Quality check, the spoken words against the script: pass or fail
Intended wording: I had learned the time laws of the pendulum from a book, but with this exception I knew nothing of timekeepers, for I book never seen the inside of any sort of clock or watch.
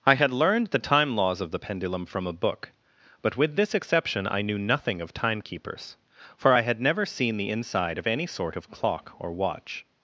fail